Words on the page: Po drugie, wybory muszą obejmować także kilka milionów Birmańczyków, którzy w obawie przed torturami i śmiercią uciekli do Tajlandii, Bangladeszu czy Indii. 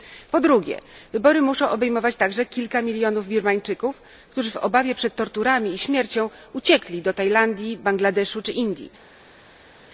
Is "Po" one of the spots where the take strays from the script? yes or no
no